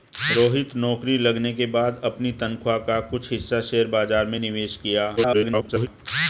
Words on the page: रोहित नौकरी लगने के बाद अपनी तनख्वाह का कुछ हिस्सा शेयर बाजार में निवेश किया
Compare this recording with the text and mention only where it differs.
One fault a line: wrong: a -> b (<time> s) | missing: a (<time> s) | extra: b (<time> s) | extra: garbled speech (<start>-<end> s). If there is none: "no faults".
extra: garbled speech (5.2-5.9 s)